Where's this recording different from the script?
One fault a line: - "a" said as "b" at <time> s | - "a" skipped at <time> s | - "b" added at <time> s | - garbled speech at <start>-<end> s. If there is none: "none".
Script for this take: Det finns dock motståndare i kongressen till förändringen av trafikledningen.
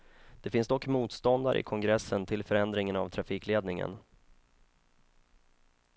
none